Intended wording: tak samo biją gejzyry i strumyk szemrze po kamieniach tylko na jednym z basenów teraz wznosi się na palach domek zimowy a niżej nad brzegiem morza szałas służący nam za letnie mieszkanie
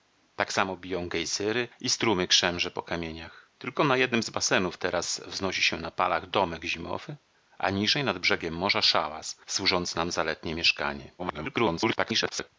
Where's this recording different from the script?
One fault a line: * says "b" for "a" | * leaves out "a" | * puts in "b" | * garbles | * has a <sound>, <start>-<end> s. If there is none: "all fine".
* garbles